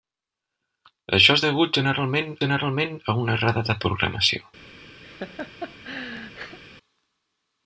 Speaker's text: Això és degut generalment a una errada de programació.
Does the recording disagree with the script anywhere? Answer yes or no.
yes